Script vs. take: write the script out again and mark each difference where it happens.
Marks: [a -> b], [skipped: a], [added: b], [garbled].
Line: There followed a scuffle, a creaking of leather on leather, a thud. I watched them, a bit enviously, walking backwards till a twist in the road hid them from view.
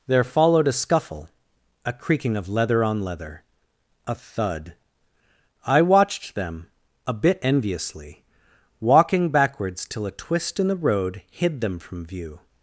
There followed a scuffle, a creaking of leather on leather, a thud. I watched them, a bit enviously, walking backwards till a twist in the road hid them from view.